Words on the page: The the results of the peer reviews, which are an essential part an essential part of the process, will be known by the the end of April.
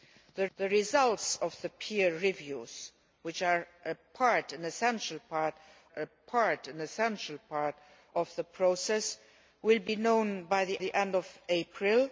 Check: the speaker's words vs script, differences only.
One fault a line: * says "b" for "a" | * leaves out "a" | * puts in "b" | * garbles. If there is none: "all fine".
all fine